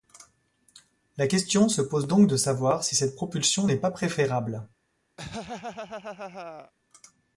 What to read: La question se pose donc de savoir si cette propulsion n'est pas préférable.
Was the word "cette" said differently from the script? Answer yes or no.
no